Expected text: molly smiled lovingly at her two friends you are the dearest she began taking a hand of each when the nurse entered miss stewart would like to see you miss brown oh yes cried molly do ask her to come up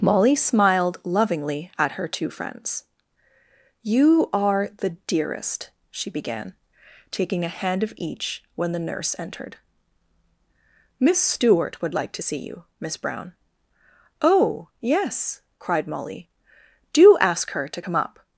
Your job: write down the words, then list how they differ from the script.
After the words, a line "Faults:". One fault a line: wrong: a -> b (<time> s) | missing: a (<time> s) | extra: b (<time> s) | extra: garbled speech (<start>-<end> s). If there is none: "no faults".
molly smiled lovingly at her two friends you are the dearest she began taking a hand of each when the nurse entered miss stewart would like to see you miss brown oh yes cried molly do ask her to come up
Faults:
no faults